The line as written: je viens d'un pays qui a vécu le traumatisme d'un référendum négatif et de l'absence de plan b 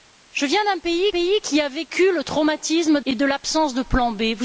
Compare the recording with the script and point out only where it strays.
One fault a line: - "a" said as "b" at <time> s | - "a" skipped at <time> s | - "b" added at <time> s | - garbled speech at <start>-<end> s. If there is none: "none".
- "pays" added at 1.1 s
- "d'un référendum négatif" skipped at 3.0 s